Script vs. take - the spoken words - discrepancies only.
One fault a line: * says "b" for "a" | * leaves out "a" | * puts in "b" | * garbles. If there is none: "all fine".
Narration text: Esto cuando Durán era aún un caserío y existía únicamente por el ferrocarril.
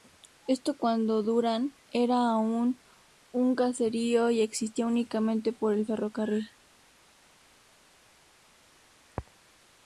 all fine